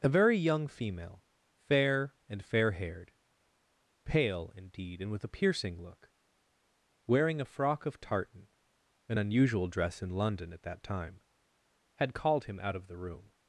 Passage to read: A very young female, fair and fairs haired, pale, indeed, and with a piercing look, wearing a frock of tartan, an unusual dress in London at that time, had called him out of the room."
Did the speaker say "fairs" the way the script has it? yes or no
no